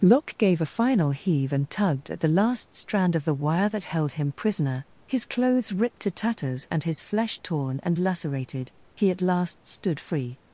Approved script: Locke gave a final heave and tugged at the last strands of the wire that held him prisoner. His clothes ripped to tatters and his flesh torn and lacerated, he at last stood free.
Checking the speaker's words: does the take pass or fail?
fail